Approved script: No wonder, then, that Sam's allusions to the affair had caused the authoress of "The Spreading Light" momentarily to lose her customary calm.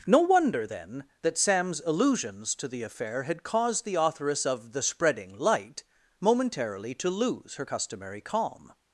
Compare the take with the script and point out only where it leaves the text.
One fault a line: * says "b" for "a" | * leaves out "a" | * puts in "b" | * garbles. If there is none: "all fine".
all fine